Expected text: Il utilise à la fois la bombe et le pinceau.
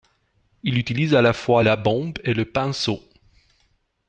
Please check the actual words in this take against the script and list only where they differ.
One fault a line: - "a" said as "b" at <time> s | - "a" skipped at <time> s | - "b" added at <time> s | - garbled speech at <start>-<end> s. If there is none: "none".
none